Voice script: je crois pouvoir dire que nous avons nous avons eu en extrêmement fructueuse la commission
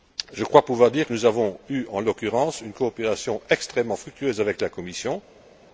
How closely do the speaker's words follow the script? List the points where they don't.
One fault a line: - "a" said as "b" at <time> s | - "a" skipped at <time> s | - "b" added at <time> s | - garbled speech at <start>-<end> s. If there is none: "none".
- "nous avons eu en" said as "eu en l'occurrence une coopération" at 1.7 s
- "avec" added at 4.4 s